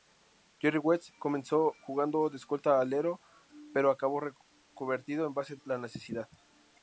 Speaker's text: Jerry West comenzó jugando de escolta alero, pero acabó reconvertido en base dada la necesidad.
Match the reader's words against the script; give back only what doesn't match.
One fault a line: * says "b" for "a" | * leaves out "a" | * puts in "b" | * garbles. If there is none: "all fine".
* leaves out "dada"